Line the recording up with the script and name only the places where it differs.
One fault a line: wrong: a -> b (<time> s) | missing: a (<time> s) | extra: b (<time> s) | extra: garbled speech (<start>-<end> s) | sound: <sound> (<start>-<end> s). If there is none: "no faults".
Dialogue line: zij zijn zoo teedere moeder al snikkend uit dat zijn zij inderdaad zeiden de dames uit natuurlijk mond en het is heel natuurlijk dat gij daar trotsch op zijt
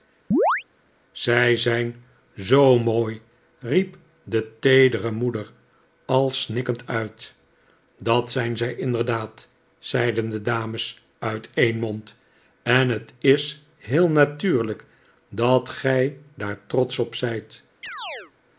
sound: chirp (0.3-0.6 s)
extra: mooi riep de (2.8 s)
wrong: natuurlijk -> een (11.5 s)
sound: chirp (17.8-18.3 s)